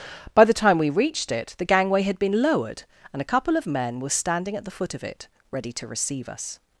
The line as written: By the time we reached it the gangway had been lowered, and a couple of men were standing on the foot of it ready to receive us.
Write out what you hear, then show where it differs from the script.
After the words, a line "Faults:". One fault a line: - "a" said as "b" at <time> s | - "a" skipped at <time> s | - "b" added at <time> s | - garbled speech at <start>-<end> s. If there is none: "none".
By the time we reached it the gangway had been lowered, and a couple of men were standing at the foot of it ready to receive us.
Faults:
- "on" said as "at" at 4.5 s